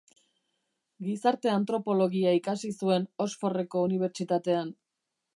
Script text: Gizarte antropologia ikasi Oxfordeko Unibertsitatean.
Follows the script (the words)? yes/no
no